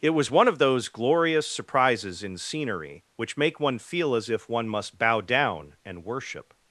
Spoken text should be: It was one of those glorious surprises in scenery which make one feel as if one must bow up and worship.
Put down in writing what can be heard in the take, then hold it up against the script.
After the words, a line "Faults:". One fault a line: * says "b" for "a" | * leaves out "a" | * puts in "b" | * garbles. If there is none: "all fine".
It was one of those glorious surprises in scenery which make one feel as if one must bow down and worship.
Faults:
* says "down" for "up"